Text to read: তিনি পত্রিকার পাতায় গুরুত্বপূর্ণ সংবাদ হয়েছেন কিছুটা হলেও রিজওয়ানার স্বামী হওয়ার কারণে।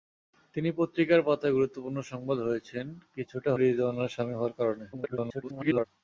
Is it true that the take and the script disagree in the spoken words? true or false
true